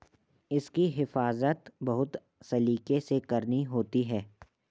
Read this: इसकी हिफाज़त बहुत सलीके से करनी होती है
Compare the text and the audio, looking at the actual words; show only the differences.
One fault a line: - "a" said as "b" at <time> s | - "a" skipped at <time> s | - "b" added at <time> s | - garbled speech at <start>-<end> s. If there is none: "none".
none